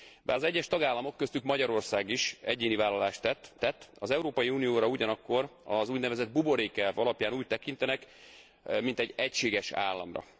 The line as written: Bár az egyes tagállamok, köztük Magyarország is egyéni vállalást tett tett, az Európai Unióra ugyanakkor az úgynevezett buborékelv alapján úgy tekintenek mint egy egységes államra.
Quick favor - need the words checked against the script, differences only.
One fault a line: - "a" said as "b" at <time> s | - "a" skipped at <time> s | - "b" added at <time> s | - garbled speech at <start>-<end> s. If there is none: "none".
none